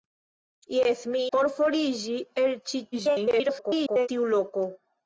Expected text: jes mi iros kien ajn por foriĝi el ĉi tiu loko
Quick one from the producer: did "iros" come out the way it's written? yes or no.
no